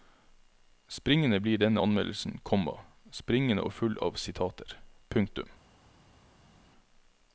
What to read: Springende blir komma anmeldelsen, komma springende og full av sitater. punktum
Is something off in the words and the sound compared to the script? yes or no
yes